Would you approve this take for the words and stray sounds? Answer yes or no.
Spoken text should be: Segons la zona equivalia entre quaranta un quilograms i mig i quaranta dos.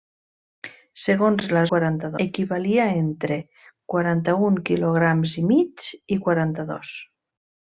no